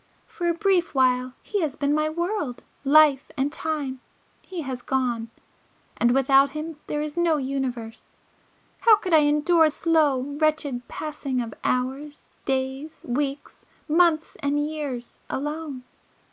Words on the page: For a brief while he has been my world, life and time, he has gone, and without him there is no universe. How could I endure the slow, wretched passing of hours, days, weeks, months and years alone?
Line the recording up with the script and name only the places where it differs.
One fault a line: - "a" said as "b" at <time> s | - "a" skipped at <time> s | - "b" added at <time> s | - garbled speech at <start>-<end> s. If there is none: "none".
- "the" skipped at 9.7 s